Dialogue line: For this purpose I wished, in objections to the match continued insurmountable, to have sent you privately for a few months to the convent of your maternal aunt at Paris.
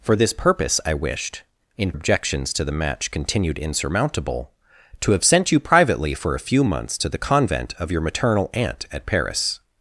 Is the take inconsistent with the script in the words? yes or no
no